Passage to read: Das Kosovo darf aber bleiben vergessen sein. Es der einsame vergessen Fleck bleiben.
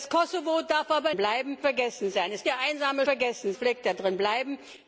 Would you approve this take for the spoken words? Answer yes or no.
yes